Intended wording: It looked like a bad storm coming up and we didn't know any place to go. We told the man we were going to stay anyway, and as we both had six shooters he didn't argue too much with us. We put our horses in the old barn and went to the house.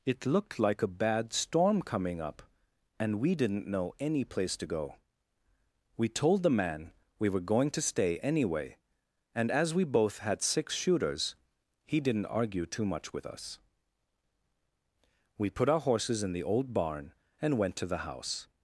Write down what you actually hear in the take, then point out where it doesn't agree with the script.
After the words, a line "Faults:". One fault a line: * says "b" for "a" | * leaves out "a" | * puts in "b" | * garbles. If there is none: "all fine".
It looked like a bad storm coming up and we didn't know any place to go. We told the man we were going to stay anyway, and as we both had six shooters he didn't argue too much with us. We put our horses in the old barn and went to the house.
Faults:
all fine